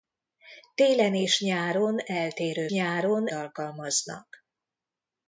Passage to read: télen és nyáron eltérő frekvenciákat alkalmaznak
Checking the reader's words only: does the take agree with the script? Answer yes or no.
no